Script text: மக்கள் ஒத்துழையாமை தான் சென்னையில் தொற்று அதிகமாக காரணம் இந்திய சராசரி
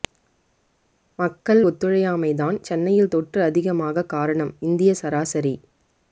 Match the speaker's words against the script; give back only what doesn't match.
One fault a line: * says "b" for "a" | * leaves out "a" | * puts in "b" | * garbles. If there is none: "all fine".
all fine